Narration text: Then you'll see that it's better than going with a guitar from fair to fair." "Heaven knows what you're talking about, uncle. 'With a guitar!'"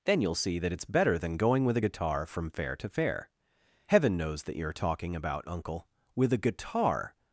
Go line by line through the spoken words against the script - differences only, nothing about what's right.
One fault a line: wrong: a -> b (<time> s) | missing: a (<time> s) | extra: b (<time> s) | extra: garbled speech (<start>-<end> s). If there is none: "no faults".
wrong: what -> that (4.4 s)